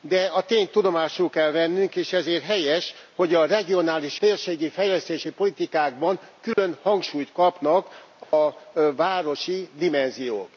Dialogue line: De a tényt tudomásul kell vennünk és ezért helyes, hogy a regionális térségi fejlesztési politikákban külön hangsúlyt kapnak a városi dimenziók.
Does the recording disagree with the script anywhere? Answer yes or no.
no